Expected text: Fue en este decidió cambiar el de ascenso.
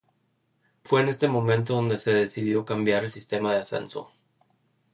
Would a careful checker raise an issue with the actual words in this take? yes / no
yes